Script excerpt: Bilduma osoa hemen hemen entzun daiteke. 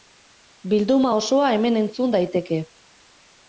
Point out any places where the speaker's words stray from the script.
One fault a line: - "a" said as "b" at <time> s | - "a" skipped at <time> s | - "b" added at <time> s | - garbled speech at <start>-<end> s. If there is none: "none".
- "hemen" skipped at 1.8 s